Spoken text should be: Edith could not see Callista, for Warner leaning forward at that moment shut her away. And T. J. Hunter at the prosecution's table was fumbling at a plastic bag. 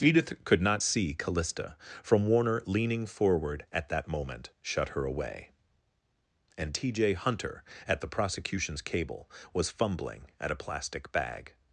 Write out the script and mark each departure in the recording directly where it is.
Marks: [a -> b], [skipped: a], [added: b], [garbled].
Edith could not see Callista, [for -> from] Warner leaning forward at that moment shut her away. And T. J. Hunter at the prosecution's [table -> cable] was fumbling at a plastic bag.